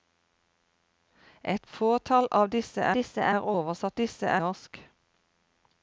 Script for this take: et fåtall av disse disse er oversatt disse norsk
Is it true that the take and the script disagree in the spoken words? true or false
false